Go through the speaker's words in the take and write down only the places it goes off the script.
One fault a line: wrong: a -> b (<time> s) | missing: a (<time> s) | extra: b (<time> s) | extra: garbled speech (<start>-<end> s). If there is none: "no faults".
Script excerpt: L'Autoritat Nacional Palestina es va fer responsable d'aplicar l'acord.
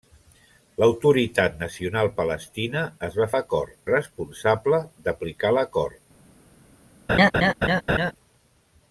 wrong: fer -> l'acord (3.4 s)